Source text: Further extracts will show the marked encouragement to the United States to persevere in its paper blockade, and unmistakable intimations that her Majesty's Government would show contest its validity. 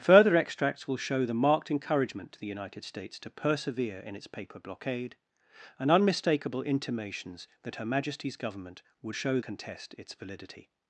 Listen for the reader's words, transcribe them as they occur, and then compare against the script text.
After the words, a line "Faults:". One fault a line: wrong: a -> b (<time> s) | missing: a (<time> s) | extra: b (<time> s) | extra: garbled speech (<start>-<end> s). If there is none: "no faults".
Further extracts will show the marked encouragement to the United States to persevere in its paper blockade, and unmistakable intimations that her Majesty's Government would show contest its validity.
Faults:
no faults